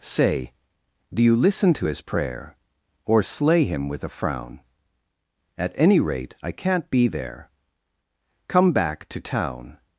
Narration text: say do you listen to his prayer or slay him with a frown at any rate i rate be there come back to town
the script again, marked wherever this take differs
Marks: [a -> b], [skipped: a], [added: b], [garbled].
say do you listen to his prayer or slay him with a frown at any rate i [rate -> can't] be there come back to town